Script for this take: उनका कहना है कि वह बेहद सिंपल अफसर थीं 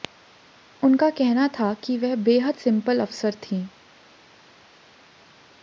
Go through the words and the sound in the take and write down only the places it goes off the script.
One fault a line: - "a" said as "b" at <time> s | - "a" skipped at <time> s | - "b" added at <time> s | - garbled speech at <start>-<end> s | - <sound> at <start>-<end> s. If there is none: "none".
- "है" said as "था" at 1.5 s